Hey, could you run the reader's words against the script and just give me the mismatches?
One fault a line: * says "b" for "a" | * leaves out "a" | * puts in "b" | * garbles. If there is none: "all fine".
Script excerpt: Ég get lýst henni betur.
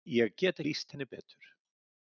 all fine